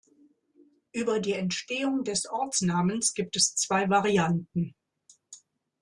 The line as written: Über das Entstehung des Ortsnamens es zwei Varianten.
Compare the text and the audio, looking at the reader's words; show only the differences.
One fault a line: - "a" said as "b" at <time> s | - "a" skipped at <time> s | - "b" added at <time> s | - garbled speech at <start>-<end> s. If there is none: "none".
- "das" said as "die" at 1.2 s
- "gibt" added at 3.1 s